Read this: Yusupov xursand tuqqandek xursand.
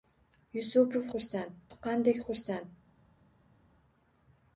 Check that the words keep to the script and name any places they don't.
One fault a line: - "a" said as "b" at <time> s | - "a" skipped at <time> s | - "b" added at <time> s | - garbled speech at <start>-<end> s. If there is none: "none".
none